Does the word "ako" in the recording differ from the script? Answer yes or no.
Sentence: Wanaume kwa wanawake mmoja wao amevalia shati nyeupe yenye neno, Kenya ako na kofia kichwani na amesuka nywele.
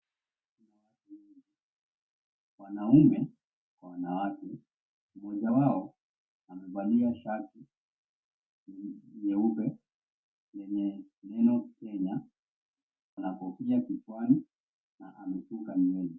yes